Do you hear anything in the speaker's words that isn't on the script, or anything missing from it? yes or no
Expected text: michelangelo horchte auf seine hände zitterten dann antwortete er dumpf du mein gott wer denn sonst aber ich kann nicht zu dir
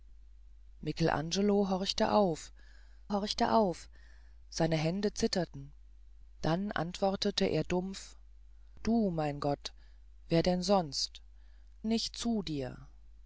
yes